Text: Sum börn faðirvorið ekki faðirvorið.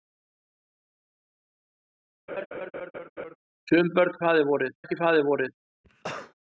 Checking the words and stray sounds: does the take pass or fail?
fail